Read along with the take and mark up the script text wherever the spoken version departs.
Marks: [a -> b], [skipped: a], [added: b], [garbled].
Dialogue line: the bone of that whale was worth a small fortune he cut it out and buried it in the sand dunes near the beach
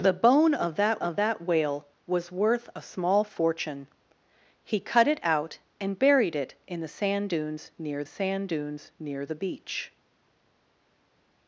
the bone of that [added: of that] whale was worth a small fortune he cut it out and buried it in the sand dunes near [added: sand dunes near] the beach